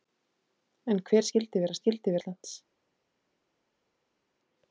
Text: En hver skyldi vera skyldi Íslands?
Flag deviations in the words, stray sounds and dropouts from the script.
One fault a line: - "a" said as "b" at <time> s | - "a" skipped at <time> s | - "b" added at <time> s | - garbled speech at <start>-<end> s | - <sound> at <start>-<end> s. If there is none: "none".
none